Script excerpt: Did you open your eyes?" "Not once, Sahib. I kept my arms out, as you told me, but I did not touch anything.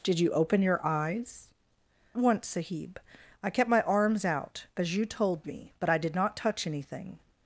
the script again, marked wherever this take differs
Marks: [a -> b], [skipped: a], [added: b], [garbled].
Did you open your eyes?" [skipped: "Not] once, Sahib. I kept my arms out, as you told me, but I did not touch anything.